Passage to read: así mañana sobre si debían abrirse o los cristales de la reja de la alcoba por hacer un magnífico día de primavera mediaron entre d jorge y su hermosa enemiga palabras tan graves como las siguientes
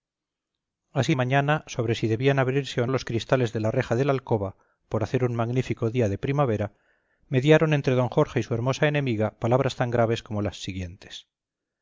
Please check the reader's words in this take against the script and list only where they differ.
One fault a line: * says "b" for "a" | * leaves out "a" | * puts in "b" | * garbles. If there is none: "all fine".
all fine